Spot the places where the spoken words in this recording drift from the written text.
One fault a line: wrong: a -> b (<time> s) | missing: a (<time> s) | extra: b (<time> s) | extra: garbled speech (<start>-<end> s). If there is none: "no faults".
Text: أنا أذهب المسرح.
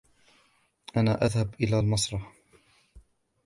extra: إلى (1.6 s)